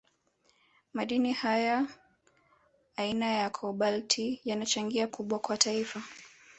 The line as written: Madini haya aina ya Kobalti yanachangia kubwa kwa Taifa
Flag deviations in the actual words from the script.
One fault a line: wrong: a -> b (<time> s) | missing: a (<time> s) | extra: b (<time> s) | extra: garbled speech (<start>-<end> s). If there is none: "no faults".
no faults